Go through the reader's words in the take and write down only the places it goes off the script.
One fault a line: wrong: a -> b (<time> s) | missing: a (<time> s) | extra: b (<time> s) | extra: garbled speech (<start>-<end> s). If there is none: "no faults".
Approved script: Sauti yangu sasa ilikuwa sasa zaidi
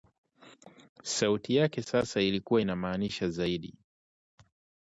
wrong: yangu -> yake (1.6 s)
wrong: sasa -> inamaanisha (2.6 s)